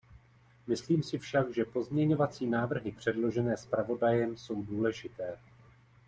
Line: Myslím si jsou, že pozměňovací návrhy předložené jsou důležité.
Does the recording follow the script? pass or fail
fail